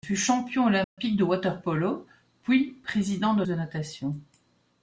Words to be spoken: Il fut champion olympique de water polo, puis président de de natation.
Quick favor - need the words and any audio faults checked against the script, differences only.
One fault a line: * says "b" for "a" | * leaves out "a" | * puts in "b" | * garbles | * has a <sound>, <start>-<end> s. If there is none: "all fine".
* has a dropout, 0.8-1.0 s